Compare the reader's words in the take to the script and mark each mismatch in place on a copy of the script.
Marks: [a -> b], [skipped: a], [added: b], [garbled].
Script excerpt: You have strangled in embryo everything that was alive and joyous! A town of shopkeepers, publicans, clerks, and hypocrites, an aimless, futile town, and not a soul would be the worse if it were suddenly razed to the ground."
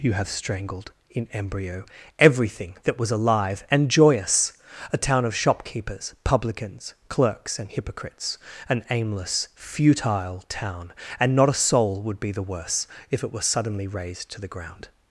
You have strangled in embryo everything that was alive and joyous! A town of shopkeepers, publicans, clerks, and hypocrites, an aimless, futile town, and not a soul would be the worse if it were suddenly razed to the ground."